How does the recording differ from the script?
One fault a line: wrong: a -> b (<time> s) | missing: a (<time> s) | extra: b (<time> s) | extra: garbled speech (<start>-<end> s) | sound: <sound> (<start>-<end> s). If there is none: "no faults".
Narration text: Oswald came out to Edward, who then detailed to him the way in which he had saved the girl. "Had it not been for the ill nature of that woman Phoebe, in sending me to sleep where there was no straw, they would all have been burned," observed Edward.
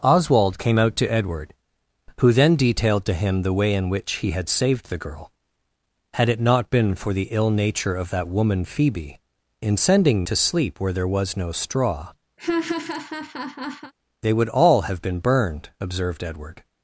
missing: me (10.2 s)
sound: laugh (12.4-13.9 s)